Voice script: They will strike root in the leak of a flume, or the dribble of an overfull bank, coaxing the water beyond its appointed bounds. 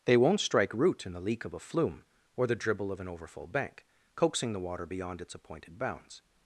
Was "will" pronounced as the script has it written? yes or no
no